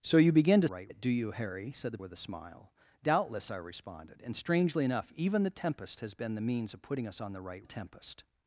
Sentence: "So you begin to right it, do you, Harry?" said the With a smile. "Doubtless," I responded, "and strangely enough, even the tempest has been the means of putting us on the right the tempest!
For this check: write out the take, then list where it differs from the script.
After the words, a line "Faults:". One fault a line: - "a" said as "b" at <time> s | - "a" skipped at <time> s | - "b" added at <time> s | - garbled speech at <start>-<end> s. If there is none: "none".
"So you begin to right it, do you, Harry?" said the With a smile. "Doubtless," I responded, "and strangely enough, even the tempest has been the means of putting us on the right the tempest!
Faults:
none